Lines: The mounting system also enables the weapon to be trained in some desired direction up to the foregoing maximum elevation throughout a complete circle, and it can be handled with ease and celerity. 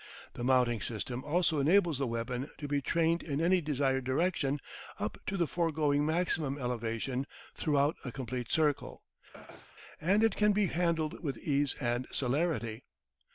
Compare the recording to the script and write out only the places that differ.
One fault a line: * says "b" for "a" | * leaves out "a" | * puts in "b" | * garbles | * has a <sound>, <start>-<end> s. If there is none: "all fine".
* says "any" for "some"
* has a throat clearing, 9.3-9.8 s